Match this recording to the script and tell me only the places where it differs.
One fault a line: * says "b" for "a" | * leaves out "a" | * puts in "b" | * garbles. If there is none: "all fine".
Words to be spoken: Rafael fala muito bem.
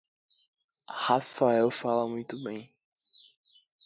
all fine